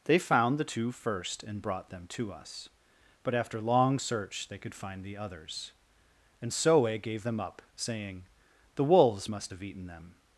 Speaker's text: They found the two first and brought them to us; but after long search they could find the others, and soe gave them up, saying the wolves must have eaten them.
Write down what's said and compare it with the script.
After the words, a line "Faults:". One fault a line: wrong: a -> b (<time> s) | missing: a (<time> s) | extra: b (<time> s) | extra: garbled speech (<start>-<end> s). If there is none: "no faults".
They found the two first and brought them to us; but after long search they could find the others, and soe gave them up, saying the wolves must have eaten them.
Faults:
no faults